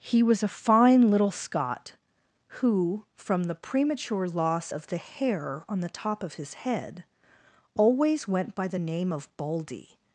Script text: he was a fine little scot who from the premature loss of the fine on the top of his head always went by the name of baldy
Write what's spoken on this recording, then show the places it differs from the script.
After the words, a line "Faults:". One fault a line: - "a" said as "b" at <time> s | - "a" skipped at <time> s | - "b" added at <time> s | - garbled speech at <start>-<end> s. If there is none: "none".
he was a fine little scot who from the premature loss of the hair on the top of his head always went by the name of baldy
Faults:
- "fine" said as "hair" at 5.0 s